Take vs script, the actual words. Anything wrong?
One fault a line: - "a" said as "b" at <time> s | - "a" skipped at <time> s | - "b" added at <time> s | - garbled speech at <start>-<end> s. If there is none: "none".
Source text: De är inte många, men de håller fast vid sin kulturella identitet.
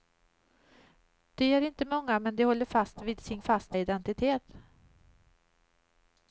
- "kulturella" said as "fast" at 3.4 s